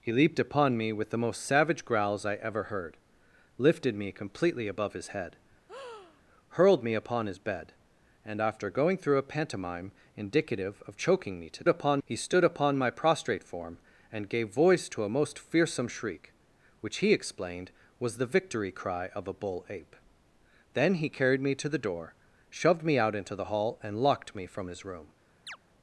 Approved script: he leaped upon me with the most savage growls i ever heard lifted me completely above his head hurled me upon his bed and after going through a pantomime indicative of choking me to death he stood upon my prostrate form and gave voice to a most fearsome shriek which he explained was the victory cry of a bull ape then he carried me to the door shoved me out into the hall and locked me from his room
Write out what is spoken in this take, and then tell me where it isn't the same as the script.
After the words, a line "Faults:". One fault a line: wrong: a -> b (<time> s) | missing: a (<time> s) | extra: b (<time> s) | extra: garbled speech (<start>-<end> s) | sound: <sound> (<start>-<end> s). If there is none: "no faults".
he leaped upon me with the most savage growls i ever heard lifted me completely above his head hurled me upon his bed and after going through a pantomime indicative of choking me to upon he stood upon my prostrate form and gave voice to a most fearsome shriek which he explained was the victory cry of a bull ape then he carried me to the door shoved me out into the hall and locked me from his room
Faults:
sound: breath (5.7-6.2 s)
wrong: death -> upon (11.7 s)
sound: chirp (25.5-25.6 s)